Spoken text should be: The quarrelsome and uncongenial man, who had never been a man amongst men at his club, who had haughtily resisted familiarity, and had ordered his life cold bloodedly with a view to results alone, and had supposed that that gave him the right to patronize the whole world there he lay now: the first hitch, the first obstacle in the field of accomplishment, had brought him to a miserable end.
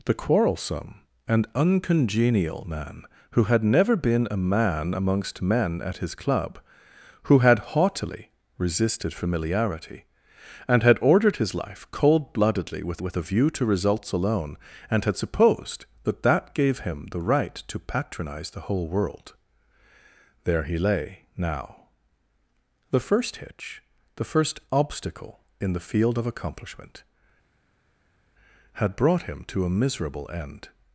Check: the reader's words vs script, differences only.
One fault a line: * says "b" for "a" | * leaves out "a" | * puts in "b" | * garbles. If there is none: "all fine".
* puts in "with"